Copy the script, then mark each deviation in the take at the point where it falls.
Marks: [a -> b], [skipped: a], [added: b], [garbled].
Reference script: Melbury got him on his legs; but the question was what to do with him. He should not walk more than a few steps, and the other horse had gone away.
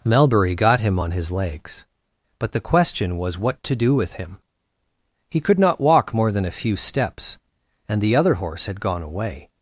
Melbury got him on his legs; but the question was what to do with him. He [should -> could] not walk more than a few steps, and the other horse had gone away.